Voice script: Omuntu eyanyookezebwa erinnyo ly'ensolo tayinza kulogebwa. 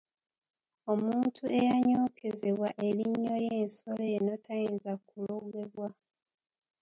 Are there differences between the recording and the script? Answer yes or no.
yes